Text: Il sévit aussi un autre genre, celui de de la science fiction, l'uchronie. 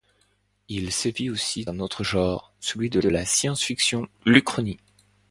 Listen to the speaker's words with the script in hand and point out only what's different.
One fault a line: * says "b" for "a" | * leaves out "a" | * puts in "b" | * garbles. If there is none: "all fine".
all fine